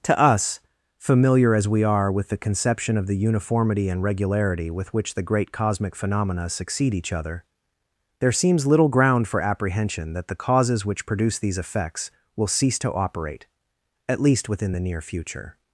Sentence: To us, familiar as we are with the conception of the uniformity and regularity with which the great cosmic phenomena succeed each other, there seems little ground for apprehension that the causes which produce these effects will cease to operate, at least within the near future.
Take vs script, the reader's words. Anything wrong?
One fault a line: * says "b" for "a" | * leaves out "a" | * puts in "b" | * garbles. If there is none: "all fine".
all fine